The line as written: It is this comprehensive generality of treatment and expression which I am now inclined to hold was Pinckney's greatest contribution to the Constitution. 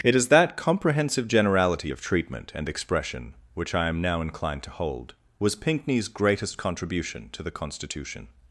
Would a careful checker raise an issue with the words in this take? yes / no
yes